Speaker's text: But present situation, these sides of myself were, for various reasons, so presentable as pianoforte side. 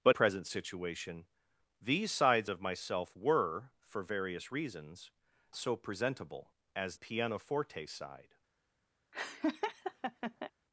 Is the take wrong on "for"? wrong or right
right